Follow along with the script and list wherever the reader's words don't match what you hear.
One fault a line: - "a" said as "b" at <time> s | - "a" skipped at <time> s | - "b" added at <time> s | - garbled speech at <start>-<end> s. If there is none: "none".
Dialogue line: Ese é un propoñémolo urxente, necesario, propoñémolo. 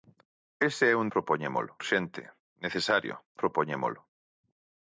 none